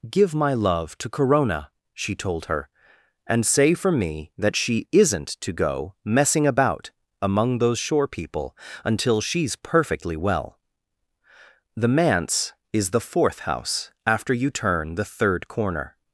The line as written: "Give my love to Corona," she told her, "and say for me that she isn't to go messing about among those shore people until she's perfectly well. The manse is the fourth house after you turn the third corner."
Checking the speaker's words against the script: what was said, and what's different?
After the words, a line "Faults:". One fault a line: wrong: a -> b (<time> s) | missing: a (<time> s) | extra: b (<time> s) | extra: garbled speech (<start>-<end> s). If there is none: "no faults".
"Give my love to Corona," she told her, "and say for me that she isn't to go messing about among those shore people until she's perfectly well. The manse is the fourth house after you turn the third corner."
Faults:
no faults